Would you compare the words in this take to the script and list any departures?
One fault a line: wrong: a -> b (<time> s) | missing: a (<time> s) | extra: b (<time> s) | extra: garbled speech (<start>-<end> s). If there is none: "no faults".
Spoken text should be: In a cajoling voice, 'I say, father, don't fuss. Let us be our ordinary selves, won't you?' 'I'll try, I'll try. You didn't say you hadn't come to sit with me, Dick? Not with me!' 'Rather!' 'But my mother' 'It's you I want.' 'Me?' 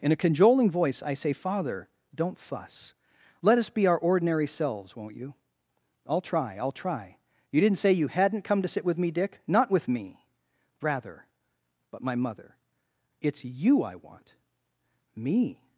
no faults